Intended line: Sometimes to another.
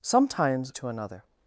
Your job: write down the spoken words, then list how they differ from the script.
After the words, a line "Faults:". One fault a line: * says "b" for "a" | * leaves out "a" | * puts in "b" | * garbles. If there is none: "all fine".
Sometimes to another.
Faults:
all fine